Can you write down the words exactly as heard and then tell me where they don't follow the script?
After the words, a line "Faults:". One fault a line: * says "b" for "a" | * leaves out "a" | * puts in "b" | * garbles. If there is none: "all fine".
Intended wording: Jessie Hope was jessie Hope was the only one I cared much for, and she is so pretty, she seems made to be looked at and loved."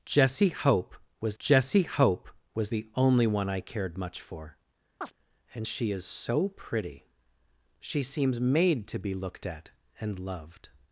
Jessie Hope was jessie Hope was the only one I cared much for, and she is so pretty, she seems made to be looked at and loved."
Faults:
all fine